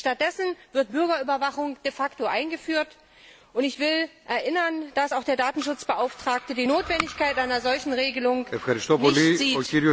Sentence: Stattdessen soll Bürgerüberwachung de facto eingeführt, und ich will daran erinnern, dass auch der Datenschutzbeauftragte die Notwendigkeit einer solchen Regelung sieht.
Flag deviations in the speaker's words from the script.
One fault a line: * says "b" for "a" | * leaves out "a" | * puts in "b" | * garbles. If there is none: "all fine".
* says "wird" for "soll"
* puts in "nicht"